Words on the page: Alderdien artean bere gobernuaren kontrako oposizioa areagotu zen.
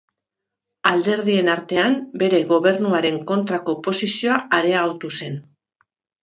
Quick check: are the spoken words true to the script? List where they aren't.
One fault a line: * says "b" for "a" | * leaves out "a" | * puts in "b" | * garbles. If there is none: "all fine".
all fine